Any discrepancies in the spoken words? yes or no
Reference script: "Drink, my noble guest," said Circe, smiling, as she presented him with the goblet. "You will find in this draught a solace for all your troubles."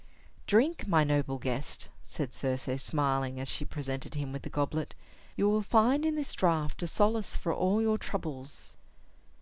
no